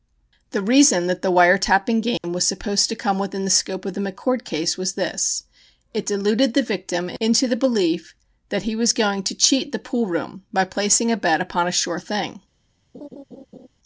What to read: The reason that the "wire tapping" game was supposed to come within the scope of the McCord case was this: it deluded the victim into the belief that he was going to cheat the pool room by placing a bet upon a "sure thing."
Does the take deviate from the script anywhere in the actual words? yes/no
no